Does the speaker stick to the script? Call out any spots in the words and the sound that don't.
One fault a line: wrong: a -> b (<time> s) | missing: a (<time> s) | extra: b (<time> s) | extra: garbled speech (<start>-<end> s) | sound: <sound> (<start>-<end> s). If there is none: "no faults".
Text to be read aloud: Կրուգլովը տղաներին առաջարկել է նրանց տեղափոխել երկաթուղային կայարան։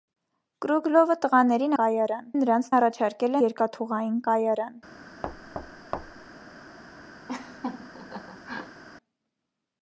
wrong: առաջարկել -> կայարան (1.8 s)
wrong: տեղափոխել -> առաջարկել (2.8 s)
sound: thud (5.2-6.3 s)
sound: laugh (7.3-8.8 s)